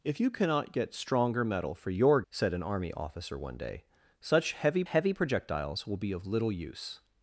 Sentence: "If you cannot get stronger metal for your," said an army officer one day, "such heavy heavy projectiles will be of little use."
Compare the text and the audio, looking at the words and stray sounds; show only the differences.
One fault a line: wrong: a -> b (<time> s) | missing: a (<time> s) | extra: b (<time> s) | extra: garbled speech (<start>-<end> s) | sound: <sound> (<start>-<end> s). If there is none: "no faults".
no faults